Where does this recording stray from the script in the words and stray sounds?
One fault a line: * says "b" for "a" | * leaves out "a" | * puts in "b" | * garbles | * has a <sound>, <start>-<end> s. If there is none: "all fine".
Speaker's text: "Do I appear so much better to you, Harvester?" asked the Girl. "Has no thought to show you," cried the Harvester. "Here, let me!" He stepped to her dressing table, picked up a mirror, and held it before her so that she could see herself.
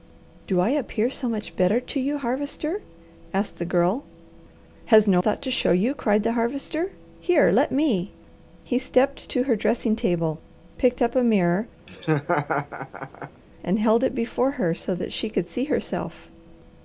* has a laugh, 11.9-13.4 s